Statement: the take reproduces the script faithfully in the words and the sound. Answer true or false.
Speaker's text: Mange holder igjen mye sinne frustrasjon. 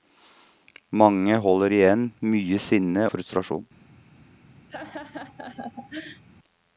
false